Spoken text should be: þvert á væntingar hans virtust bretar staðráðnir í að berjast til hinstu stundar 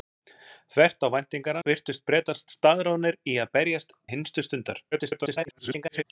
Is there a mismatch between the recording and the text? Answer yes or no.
yes